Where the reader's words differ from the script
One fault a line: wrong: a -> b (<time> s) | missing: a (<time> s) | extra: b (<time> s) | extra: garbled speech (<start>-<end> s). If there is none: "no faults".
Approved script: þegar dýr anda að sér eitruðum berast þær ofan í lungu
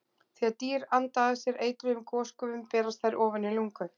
extra: gosgufum (2.1 s)